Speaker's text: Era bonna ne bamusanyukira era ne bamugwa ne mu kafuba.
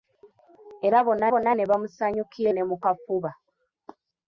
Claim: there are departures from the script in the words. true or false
true